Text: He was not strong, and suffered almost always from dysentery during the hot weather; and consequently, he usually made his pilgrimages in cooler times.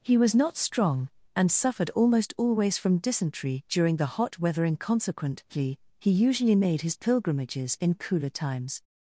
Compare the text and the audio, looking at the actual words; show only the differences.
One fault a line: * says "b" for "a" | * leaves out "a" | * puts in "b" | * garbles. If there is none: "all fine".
all fine